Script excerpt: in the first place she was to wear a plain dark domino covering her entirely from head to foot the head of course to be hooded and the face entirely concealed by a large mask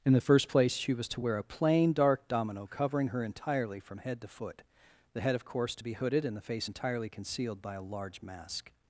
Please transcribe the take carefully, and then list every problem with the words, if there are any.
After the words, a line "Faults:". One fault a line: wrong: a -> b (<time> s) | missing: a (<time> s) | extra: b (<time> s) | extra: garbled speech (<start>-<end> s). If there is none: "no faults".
in the first place she was to wear a plain dark domino covering her entirely from head to foot the head of course to be hooded and the face entirely concealed by a large mask
Faults:
no faults